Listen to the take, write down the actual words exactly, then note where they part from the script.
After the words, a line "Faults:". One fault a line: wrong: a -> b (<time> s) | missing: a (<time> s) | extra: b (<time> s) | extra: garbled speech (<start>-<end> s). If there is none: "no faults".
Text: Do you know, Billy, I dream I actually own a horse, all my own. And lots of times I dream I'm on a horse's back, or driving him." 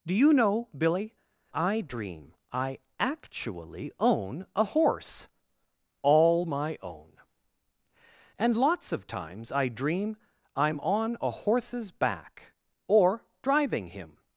Do you know, Billy, I dream I actually own a horse, all my own. And lots of times I dream I'm on a horse's back, or driving him."
Faults:
no faults